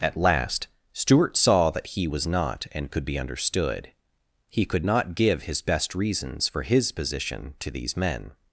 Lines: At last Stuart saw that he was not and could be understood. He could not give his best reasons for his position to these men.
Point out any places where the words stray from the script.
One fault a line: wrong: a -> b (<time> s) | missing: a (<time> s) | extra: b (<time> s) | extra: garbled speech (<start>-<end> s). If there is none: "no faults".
no faults